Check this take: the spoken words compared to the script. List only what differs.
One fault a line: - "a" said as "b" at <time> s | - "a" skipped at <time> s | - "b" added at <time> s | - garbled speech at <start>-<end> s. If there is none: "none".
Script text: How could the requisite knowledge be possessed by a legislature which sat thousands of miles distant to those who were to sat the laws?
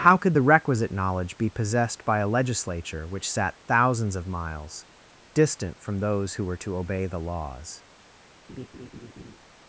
- "to" said as "from" at 5.8 s
- "sat" said as "obey" at 6.8 s